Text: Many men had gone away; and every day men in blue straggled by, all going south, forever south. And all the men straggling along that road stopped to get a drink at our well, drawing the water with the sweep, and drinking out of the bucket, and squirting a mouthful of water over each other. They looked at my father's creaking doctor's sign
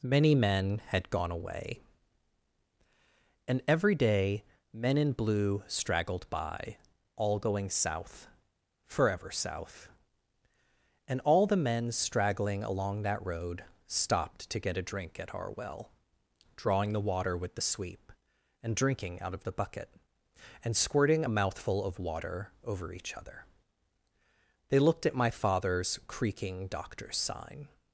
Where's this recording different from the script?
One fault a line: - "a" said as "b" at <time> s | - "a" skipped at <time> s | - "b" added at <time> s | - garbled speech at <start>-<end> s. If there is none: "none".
none